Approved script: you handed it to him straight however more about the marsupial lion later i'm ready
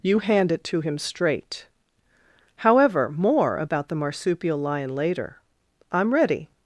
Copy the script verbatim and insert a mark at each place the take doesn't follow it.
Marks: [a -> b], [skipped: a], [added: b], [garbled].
you [handed -> hand] it to him straight however more about the marsupial lion later i'm ready